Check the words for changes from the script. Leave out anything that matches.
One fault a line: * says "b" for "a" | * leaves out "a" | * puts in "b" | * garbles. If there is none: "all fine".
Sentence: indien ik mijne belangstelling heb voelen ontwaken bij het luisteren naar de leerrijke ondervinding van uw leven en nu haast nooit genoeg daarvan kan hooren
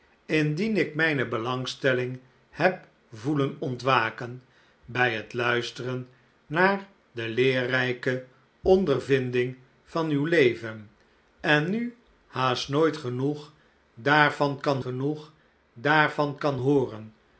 * puts in "genoeg daarvan kan"